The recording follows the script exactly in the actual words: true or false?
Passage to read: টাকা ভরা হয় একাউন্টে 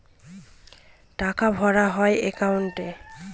true